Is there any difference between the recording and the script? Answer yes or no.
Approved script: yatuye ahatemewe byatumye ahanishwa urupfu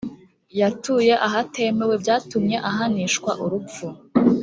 no